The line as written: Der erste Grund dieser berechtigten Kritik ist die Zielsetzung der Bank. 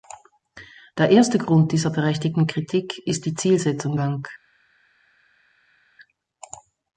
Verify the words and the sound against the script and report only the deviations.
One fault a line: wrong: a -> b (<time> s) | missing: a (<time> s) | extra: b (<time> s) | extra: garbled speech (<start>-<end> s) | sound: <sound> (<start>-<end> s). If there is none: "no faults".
missing: der (4.0 s)